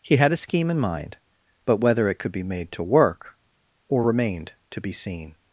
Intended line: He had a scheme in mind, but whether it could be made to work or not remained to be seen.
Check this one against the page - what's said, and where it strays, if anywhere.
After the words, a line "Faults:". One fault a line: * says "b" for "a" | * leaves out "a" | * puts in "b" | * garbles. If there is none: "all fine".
He had a scheme in mind, but whether it could be made to work or remained to be seen.
Faults:
* leaves out "not"